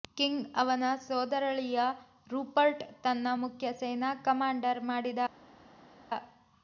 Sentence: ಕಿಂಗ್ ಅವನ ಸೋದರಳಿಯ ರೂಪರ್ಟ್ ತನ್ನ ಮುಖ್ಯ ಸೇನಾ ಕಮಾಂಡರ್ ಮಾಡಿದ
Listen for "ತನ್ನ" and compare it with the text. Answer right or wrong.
right